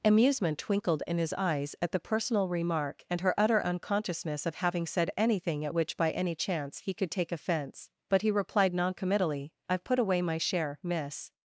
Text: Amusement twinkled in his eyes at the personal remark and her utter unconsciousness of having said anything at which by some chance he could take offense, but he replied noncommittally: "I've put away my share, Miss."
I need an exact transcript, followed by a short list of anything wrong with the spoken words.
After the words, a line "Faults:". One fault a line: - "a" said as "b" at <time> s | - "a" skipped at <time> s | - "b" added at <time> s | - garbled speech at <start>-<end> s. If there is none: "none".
Amusement twinkled in his eyes at the personal remark and her utter unconsciousness of having said anything at which by any chance he could take offense, but he replied noncommittally: "I've put away my share, Miss."
Faults:
- "some" said as "any" at 6.1 s